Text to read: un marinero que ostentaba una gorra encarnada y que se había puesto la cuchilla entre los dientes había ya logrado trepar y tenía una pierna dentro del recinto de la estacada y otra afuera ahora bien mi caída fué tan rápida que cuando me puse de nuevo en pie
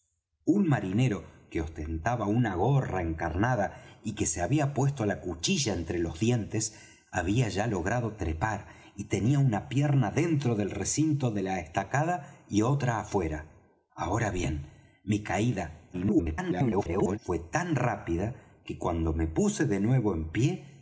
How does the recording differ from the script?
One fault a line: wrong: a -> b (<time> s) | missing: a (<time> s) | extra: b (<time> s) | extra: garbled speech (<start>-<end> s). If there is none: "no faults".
extra: garbled speech (15.9-17.2 s)